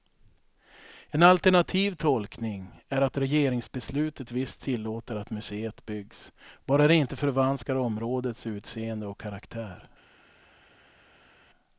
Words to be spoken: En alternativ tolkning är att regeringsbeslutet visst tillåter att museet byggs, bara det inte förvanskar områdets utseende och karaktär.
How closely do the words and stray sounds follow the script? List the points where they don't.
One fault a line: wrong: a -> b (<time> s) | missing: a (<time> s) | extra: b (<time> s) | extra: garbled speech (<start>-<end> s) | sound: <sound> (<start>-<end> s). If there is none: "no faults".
no faults